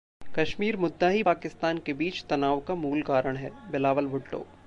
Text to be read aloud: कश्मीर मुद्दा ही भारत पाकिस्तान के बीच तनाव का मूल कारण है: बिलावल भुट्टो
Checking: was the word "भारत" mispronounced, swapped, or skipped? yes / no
yes